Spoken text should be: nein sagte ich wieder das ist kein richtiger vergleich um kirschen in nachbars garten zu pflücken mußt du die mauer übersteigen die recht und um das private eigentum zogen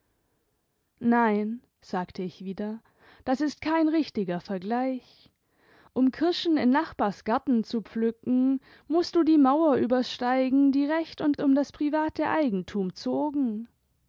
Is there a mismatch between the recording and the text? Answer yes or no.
no